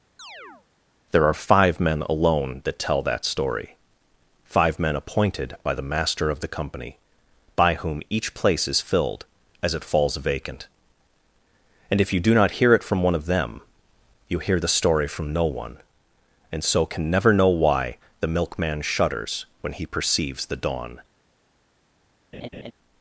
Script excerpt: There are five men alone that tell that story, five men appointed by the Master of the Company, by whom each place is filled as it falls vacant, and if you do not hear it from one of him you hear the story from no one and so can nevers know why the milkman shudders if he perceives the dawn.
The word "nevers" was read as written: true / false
false